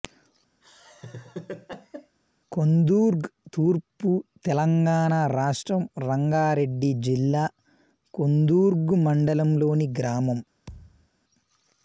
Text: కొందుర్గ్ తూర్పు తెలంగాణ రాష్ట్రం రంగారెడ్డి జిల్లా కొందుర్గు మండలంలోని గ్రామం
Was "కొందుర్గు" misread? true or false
false